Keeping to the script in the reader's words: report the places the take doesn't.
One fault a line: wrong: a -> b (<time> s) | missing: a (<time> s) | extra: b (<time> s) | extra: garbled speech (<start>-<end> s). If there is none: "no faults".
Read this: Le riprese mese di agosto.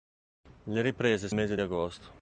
no faults